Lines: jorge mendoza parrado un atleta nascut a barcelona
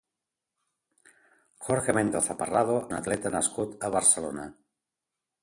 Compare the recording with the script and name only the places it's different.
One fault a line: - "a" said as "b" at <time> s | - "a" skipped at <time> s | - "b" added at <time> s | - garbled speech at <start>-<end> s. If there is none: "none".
none